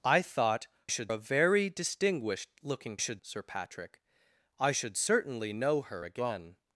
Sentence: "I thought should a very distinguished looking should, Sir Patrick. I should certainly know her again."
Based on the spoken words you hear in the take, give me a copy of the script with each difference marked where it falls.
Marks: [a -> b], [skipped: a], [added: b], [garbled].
"I thought should a very distinguished looking should, Sir Patrick. I should certainly know her again."